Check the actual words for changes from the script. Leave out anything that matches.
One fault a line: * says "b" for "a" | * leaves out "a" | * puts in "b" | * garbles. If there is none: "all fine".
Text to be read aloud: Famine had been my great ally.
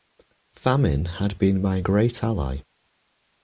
all fine